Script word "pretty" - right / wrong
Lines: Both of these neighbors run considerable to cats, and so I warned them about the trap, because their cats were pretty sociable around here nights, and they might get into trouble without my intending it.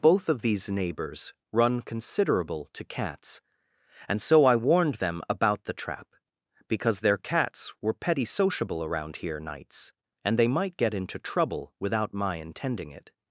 wrong